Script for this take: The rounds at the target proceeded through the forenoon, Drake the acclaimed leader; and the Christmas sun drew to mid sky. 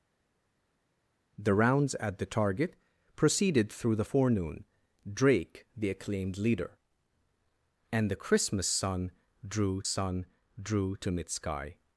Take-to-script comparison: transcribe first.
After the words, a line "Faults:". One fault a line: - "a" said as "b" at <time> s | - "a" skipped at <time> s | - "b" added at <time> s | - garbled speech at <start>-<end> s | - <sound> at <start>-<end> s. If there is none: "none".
The rounds at the target proceeded through the forenoon, Drake the acclaimed leader; and the Christmas sun drew sun drew to mid sky.
Faults:
- "sun drew" added at 9.8 s